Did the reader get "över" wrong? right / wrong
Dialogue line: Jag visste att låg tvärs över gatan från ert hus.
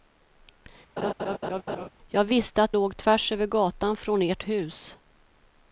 right